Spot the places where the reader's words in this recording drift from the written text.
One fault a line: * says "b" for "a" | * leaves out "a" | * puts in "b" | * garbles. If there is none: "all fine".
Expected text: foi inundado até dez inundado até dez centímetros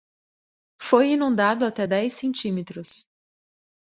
* leaves out "inundado até dez"